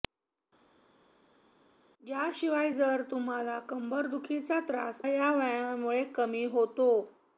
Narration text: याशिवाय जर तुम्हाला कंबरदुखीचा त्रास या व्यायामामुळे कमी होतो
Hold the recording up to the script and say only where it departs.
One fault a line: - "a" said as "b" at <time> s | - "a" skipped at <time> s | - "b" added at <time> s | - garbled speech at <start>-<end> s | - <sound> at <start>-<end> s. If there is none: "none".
none